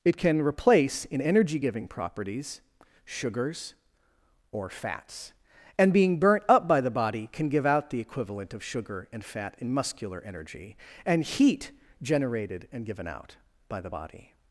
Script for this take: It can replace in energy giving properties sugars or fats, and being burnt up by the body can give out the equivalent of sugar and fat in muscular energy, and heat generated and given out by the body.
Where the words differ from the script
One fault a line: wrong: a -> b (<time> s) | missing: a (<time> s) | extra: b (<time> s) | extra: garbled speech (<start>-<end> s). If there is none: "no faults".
no faults